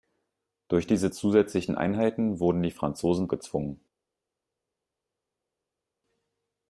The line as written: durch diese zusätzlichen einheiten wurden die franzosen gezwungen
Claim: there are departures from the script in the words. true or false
false